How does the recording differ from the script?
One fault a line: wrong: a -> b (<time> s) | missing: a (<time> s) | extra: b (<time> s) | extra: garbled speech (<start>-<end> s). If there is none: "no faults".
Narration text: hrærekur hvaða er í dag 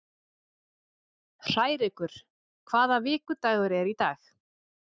extra: vikudagur (3.1 s)